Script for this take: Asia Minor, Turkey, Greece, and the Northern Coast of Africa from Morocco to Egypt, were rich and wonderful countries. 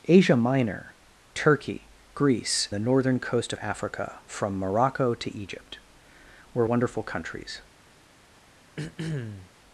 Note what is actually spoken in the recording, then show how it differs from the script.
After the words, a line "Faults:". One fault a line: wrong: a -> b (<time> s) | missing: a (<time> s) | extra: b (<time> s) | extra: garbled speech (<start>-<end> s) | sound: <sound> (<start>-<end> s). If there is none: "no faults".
Asia Minor, Turkey, Greece, the Northern Coast of Africa from Morocco to Egypt, were wonderful countries.
Faults:
missing: and (2.7 s)
missing: rich and (6.6 s)
sound: throat clearing (8.8-9.5 s)